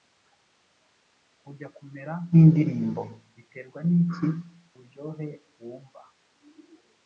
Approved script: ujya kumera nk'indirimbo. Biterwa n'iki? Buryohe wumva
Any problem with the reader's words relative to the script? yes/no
no